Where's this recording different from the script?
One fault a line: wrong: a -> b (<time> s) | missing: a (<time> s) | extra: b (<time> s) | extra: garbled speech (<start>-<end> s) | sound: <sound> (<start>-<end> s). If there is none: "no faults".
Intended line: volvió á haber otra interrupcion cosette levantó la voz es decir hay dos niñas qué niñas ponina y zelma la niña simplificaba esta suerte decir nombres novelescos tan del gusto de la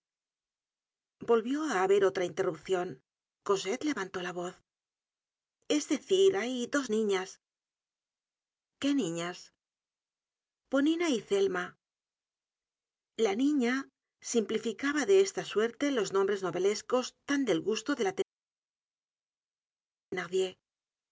extra: de (15.1 s)
wrong: decir -> los (15.9 s)